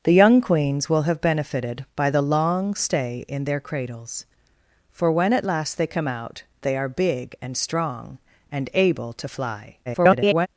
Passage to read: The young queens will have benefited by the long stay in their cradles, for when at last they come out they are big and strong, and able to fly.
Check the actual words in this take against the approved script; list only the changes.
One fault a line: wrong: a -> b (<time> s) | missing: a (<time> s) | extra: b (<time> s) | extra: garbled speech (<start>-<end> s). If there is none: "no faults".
extra: garbled speech (9.9-10.5 s)